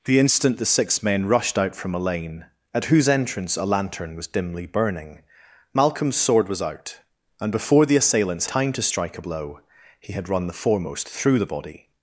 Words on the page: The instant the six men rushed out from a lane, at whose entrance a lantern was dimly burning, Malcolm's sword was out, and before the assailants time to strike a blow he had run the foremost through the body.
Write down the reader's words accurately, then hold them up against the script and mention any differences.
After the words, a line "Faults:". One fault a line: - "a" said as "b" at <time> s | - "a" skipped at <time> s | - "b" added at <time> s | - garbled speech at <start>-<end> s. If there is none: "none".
The instant the six men rushed out from a lane, at whose entrance a lantern was dimly burning, Malcolm's sword was out, and before the assailants time to strike a blow he had run the foremost through the body.
Faults:
none